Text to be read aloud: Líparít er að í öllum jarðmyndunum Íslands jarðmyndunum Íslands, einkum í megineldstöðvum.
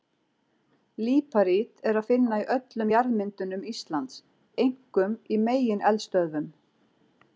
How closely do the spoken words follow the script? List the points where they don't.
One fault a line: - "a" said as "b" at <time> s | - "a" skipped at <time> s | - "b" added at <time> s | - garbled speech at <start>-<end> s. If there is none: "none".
- "finna" added at 2.1 s
- "jarðmyndunum Íslands" skipped at 4.2 s